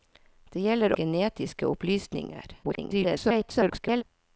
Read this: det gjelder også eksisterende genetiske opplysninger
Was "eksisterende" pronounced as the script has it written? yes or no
no